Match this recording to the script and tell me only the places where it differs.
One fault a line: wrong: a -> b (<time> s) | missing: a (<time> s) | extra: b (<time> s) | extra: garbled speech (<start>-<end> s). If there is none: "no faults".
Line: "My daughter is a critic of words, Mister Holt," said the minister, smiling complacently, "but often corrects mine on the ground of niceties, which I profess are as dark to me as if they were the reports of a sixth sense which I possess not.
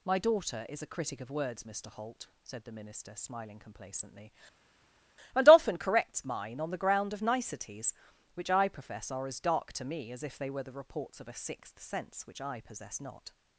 wrong: but -> and (5.3 s)